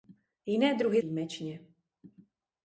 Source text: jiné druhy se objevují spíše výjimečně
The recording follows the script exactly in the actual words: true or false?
false